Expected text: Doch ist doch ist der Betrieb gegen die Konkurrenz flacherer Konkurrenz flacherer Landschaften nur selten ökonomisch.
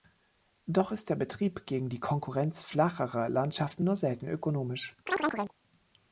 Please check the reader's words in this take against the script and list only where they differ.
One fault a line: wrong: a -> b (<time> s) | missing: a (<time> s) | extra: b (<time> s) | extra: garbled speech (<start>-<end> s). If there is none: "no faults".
missing: doch ist (1.1 s)
missing: Konkurrenz flacherer (3.3 s)